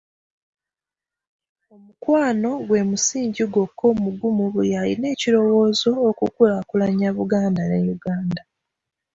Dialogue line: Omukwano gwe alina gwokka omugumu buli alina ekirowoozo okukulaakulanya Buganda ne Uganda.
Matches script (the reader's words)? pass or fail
fail